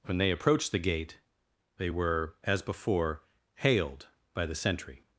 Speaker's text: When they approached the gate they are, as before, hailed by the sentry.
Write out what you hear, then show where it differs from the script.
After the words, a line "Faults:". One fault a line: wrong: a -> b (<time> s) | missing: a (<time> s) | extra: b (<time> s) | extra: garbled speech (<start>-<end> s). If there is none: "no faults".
When they approached the gate they were, as before, hailed by the sentry.
Faults:
wrong: are -> were (1.9 s)